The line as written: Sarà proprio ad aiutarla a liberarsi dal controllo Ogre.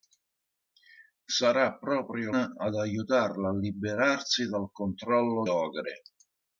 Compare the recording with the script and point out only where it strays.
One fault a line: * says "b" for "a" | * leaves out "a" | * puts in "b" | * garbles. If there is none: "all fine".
all fine